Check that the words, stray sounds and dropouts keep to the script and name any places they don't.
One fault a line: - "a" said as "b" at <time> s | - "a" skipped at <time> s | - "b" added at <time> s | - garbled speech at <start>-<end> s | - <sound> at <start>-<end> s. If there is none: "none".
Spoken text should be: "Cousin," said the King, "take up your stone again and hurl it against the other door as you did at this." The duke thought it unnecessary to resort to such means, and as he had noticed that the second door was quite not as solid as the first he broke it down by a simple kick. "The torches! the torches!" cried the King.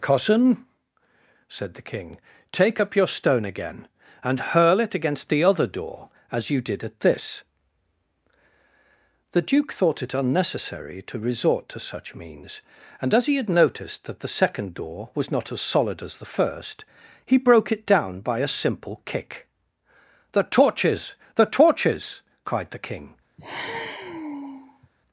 - "quite" skipped at 15.3 s
- sigh at 23.4-24.9 s